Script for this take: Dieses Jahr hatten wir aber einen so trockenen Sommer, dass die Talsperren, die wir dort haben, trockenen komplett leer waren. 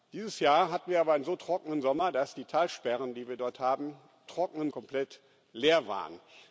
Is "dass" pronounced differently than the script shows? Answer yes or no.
no